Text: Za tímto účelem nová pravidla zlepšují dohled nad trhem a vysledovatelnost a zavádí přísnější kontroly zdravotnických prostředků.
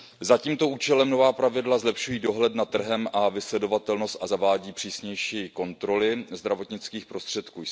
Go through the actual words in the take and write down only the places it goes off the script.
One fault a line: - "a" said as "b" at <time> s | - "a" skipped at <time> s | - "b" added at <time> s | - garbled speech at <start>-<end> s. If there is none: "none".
none